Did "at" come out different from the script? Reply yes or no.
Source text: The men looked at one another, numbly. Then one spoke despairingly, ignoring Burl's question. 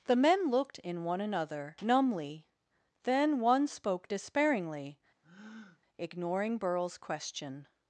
yes